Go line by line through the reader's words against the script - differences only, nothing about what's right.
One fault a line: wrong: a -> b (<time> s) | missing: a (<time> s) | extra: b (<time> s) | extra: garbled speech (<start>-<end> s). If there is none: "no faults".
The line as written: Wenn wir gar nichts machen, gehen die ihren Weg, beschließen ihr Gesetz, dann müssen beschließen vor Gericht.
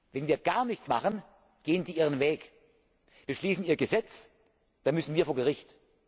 wrong: beschließen -> wir (5.1 s)